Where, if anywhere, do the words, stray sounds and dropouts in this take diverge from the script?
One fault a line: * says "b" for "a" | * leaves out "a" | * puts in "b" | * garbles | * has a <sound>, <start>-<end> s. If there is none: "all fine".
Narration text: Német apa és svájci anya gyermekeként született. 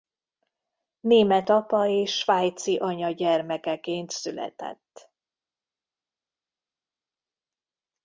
all fine